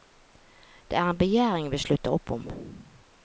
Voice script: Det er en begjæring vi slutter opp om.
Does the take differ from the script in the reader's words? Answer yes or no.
no